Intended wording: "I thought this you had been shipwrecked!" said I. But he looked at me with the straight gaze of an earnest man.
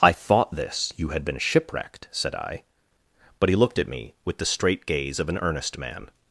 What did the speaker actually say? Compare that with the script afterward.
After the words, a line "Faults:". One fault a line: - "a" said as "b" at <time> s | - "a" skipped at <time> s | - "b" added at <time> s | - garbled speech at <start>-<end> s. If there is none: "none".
"I thought this you had been shipwrecked!" said I. But he looked at me with the straight gaze of an earnest man.
Faults:
none